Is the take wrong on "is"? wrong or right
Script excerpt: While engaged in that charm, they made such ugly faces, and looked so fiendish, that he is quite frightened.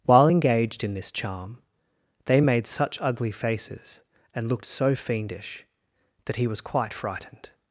wrong